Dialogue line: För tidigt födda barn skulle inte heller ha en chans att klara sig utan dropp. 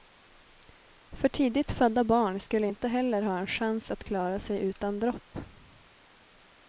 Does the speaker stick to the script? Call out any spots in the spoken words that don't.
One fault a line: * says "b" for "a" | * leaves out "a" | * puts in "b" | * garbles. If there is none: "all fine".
all fine